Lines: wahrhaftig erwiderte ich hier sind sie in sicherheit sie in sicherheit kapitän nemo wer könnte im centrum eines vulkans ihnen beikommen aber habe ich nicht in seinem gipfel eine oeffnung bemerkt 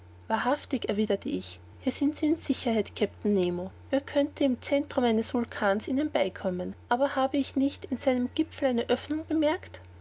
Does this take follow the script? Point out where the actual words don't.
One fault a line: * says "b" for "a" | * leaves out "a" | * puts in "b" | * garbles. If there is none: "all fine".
* leaves out "sie in sicherheit"